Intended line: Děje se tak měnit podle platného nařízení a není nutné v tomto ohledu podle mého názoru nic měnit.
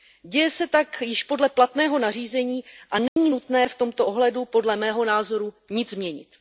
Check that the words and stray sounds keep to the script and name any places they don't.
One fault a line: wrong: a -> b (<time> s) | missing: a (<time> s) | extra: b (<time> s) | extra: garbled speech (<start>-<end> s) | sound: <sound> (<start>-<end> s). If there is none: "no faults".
wrong: měnit -> již (1.0 s)
sound: dropout (3.1-3.2 s)